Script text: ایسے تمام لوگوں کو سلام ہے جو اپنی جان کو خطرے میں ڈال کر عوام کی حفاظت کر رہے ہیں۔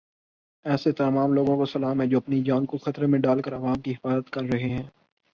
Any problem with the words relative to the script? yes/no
no